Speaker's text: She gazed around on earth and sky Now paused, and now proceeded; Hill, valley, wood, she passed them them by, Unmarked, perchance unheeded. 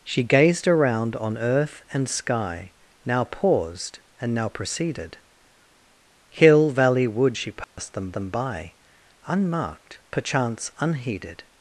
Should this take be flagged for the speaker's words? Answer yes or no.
no